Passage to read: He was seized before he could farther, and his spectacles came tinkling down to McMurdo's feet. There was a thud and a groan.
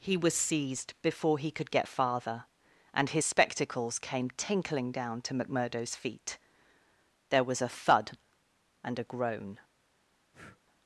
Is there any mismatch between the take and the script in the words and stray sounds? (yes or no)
yes